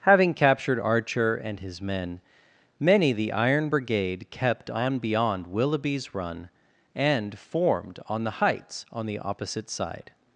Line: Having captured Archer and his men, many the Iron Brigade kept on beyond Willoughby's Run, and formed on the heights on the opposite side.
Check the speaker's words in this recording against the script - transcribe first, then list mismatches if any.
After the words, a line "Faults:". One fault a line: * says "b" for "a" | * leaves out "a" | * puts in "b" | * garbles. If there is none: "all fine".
Having captured Archer and his men, many the Iron Brigade kept on beyond Willoughby's Run, and formed on the heights on the opposite side.
Faults:
all fine